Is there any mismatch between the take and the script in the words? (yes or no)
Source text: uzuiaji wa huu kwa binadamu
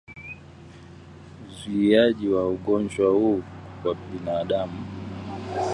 yes